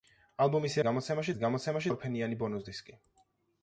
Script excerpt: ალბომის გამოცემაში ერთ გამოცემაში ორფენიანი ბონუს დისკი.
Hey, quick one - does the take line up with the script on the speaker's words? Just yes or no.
yes